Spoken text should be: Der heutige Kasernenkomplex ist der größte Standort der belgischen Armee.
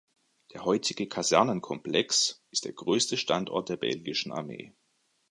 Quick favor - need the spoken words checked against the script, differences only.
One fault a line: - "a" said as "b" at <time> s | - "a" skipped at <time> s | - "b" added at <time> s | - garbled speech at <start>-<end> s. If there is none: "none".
none